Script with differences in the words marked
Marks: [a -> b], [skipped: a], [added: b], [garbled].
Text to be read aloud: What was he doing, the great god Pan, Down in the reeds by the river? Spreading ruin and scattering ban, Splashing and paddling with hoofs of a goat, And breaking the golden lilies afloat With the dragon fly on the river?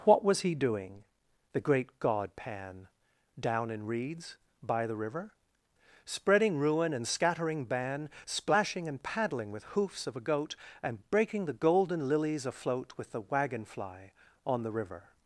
What was he doing, the great god Pan, Down in [skipped: the] reeds by the river? Spreading ruin and scattering ban, Splashing and paddling with hoofs of a goat, And breaking the golden lilies afloat With the [dragon -> wagon] fly on the river?